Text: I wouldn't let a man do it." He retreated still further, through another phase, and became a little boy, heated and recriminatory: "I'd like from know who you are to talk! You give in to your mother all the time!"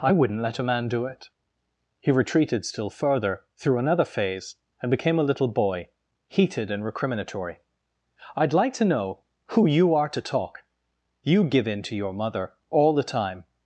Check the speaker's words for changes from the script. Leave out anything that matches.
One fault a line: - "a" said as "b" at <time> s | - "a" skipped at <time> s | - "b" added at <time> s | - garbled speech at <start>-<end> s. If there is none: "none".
- "from" said as "to" at 8.7 s